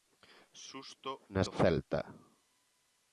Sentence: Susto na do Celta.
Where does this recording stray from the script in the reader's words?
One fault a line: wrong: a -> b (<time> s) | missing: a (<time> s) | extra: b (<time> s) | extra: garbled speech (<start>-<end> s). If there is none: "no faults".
no faults